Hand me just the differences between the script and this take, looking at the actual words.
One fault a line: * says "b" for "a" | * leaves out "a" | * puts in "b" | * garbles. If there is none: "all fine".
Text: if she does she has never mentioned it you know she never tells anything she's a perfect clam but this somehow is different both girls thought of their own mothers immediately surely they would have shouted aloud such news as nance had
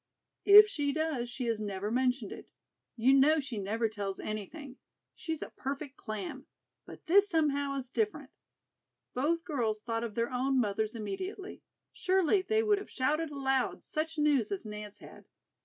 all fine